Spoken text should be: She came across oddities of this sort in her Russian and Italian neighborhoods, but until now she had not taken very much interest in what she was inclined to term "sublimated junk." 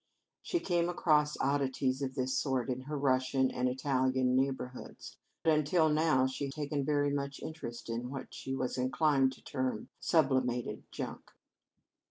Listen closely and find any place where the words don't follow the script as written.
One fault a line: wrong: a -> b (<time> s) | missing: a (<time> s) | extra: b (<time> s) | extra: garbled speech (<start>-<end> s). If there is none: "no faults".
missing: but (5.2 s)
missing: had not (6.5 s)